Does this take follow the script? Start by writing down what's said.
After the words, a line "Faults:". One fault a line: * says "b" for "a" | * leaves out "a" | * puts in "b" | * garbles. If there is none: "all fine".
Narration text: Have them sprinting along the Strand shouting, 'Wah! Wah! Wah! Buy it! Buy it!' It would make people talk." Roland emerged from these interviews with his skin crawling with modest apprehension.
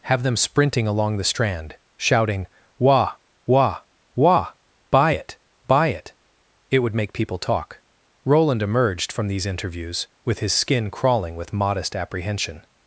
Have them sprinting along the Strand shouting, 'Wah! Wah! Wah! Buy it! Buy it!' It would make people talk." Roland emerged from these interviews with his skin crawling with modest apprehension.
Faults:
all fine